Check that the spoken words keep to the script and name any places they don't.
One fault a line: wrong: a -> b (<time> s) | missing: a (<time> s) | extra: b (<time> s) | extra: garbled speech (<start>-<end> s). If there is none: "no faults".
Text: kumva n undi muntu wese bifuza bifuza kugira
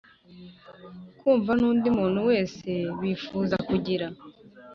missing: bifuza (3.6 s)